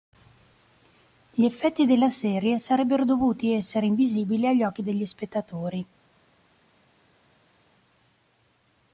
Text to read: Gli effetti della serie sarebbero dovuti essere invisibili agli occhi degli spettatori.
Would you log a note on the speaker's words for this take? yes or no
no